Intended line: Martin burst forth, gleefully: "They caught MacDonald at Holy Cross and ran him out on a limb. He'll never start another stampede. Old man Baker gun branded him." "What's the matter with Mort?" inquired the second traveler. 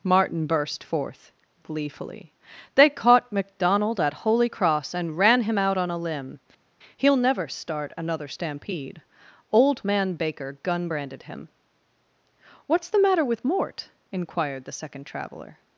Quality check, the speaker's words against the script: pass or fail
pass